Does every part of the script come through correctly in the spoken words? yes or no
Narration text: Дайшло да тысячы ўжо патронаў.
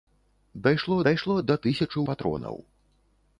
no